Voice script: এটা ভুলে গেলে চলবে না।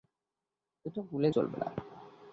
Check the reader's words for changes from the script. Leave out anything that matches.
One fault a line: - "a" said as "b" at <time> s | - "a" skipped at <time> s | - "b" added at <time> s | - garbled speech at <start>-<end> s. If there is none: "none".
- "গেলে" skipped at 1.3 s